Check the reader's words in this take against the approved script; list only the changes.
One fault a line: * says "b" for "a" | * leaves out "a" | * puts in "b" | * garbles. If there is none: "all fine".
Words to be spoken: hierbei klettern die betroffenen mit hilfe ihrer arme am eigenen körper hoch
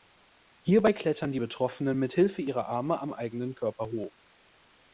all fine